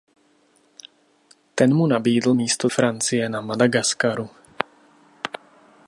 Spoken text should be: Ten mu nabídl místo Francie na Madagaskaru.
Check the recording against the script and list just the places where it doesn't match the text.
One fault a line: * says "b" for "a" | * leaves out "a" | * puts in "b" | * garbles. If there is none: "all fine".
all fine